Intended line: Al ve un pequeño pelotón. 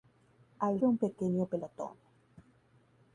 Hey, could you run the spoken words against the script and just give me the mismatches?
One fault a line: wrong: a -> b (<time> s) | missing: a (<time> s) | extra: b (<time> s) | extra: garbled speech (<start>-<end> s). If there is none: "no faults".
no faults